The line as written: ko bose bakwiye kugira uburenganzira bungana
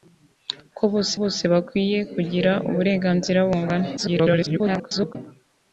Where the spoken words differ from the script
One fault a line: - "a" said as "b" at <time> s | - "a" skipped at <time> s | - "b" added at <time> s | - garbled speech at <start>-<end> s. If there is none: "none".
- "bose" added at 1.2 s
- garbled speech at 4.0-5.2 s